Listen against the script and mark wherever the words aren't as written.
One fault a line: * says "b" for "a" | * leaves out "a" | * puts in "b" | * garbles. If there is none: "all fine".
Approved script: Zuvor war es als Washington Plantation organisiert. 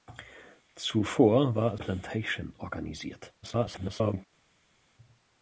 * leaves out "es als Washington"
* garbles